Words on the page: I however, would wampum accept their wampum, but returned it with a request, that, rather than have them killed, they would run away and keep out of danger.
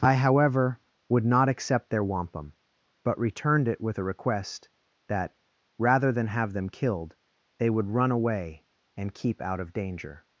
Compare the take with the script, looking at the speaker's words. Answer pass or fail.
fail